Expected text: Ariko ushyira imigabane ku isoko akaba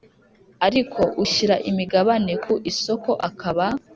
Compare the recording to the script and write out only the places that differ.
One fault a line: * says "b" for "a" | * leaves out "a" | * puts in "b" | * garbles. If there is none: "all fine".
all fine